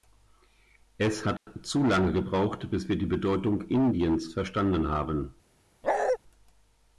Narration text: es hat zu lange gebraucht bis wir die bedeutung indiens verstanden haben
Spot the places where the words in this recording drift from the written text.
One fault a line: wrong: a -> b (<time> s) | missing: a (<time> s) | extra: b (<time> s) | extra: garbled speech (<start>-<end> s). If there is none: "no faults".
no faults